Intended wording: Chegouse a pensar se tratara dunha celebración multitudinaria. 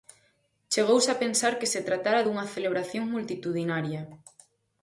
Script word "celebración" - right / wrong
right